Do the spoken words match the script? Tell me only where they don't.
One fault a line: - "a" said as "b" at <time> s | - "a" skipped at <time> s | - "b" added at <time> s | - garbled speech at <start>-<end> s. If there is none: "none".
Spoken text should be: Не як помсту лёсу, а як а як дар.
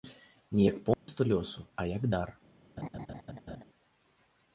- "а як" skipped at 2.1 s